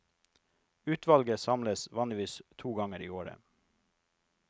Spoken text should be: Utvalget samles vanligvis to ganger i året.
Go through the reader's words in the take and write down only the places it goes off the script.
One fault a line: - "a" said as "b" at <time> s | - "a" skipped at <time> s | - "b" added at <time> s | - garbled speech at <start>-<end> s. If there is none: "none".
none